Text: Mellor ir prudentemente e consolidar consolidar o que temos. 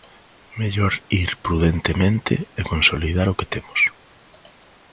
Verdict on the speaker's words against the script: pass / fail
fail